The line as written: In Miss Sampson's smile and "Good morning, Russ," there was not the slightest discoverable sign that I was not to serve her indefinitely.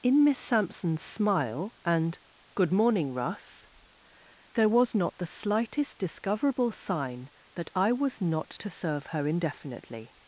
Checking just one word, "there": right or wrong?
right